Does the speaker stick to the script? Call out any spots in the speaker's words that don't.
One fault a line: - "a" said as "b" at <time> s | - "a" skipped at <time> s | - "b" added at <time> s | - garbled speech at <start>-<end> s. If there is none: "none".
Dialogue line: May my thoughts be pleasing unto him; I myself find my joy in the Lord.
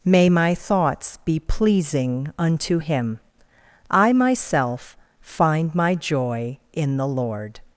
none